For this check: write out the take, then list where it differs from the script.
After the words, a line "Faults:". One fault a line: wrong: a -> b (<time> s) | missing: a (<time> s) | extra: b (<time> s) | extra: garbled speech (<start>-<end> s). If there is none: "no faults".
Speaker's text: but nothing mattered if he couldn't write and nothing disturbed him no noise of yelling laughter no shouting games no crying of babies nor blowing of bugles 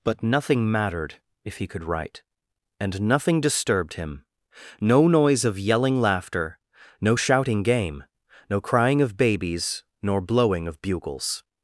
but nothing mattered if he could write and nothing disturbed him no noise of yelling laughter no shouting game no crying of babies nor blowing of bugles
Faults:
wrong: couldn't -> could (1.7 s)
wrong: games -> game (7.6 s)